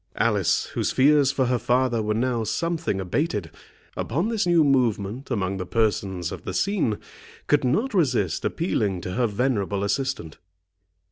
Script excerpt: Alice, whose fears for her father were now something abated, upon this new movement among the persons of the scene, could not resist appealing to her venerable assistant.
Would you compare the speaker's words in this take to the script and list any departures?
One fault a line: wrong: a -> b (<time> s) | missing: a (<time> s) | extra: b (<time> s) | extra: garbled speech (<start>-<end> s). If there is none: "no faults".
no faults